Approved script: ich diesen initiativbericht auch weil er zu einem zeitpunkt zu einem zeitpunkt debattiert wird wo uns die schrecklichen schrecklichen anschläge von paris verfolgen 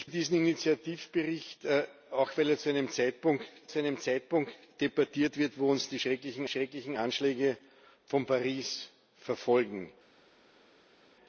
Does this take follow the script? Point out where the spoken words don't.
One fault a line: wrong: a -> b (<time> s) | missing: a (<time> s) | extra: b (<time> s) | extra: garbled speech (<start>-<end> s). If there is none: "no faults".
no faults